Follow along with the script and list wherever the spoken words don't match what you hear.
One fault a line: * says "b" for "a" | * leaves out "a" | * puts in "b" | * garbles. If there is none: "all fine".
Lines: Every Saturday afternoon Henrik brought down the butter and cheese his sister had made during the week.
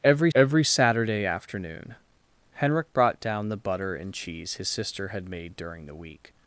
* puts in "every"